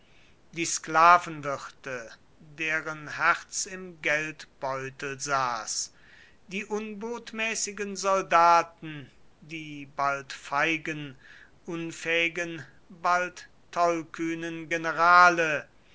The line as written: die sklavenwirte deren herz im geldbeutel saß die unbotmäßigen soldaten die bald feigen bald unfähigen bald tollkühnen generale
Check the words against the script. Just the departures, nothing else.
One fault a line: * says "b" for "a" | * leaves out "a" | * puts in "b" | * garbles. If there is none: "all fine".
* leaves out "bald"